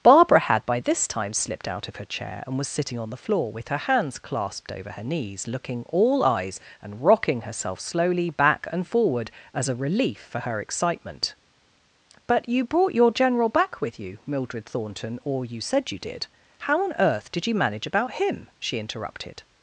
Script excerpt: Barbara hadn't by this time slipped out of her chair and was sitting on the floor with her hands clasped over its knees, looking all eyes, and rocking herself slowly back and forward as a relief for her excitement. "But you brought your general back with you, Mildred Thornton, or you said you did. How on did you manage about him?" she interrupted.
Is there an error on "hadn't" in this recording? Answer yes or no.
yes